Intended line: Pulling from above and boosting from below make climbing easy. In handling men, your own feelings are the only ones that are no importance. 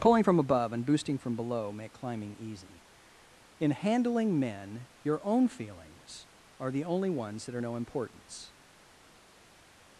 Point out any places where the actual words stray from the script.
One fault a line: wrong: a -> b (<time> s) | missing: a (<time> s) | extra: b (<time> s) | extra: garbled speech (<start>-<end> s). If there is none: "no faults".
no faults